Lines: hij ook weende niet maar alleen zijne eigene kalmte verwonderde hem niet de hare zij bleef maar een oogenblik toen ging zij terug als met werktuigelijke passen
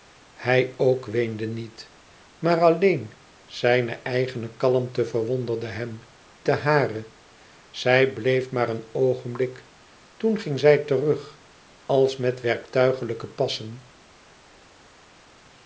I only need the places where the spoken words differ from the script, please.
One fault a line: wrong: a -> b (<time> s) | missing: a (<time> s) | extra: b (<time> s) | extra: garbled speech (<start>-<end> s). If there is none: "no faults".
missing: niet (6.0 s)